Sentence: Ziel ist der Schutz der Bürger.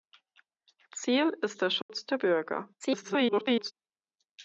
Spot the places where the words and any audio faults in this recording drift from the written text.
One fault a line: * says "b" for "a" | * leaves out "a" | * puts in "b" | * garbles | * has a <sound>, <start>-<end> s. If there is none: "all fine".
* has a dropout, 1.8-1.9 s
* garbles